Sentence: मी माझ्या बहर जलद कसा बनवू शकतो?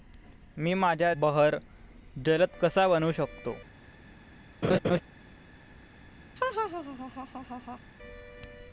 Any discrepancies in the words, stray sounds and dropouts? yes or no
yes